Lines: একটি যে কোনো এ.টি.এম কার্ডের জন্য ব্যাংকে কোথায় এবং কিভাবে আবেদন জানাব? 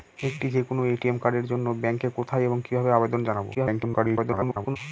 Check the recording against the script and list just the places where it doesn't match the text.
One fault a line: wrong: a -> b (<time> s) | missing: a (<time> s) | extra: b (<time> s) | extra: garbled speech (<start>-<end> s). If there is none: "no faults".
extra: garbled speech (3.5-4.8 s)